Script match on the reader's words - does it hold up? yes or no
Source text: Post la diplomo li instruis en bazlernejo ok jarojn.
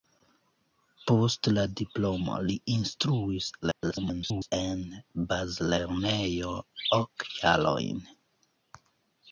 no